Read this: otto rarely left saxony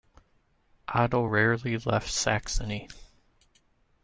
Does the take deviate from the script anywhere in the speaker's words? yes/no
no